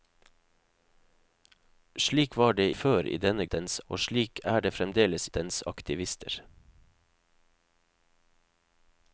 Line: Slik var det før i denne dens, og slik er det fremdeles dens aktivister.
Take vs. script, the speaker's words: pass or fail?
pass